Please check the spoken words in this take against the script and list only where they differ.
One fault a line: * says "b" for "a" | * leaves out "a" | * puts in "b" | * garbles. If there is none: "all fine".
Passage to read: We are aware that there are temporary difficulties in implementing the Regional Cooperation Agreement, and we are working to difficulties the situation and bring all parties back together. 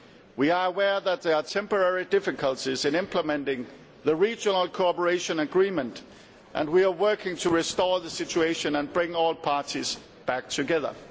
* says "restore" for "difficulties"